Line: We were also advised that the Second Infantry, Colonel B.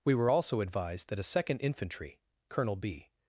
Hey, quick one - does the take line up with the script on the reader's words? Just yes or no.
no